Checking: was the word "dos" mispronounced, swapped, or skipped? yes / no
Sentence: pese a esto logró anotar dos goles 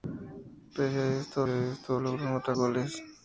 yes